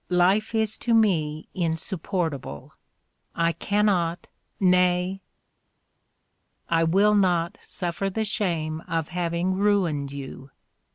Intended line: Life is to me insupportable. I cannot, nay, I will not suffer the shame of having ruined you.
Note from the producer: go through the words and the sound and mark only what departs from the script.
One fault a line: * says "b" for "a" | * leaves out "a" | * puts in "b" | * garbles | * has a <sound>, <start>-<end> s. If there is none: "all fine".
all fine